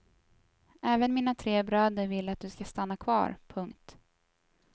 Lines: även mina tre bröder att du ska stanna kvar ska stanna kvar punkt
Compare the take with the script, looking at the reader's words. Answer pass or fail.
fail